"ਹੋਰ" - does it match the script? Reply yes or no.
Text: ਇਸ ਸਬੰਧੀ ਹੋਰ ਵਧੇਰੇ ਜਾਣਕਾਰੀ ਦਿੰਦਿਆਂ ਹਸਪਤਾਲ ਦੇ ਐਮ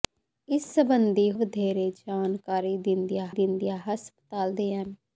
no